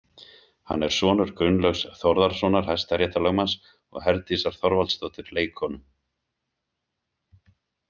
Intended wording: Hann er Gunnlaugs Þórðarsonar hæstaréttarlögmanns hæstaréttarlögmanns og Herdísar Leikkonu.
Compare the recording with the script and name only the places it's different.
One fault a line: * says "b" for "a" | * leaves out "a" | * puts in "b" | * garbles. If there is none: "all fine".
* puts in "sonur"
* leaves out "hæstaréttarlögmanns"
* puts in "Þorvaldsdóttur"